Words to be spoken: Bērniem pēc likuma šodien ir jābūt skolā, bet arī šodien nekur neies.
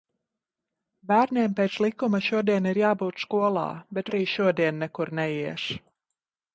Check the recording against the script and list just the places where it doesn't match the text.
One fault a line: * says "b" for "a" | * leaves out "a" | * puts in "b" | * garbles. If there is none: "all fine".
all fine